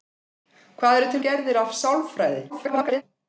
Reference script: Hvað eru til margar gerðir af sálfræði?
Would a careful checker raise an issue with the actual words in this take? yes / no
yes